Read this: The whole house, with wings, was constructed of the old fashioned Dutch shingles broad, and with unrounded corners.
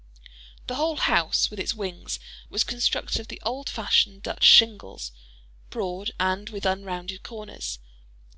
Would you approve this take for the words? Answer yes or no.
no